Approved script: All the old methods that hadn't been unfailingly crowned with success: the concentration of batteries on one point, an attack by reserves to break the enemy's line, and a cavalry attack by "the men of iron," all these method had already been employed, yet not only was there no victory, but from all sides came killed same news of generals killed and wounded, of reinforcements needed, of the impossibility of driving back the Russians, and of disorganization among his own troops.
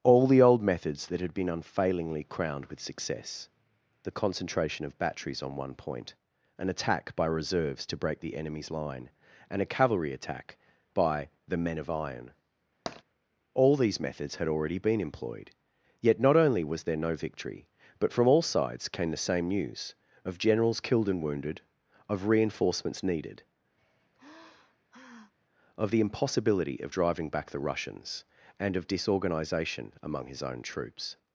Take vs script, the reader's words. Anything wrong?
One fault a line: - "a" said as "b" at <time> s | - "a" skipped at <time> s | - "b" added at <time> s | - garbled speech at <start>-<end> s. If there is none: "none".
- "hadn't" said as "had" at 1.2 s
- "method" said as "methods" at 14.0 s
- "killed" said as "the" at 19.1 s